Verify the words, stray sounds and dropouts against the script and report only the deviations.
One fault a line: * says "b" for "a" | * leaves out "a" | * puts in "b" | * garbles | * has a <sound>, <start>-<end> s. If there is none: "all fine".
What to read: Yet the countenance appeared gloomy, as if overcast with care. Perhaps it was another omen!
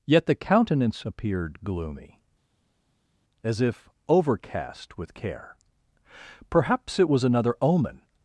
all fine